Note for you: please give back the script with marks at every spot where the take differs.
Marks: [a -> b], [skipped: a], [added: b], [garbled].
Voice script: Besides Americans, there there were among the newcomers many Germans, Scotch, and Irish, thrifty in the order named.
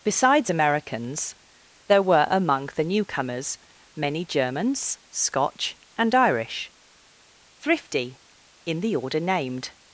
Besides Americans, there [skipped: there] were among the newcomers many Germans, Scotch, and Irish, thrifty in the order named.